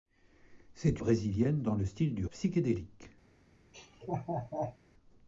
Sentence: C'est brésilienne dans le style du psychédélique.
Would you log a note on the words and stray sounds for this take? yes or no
yes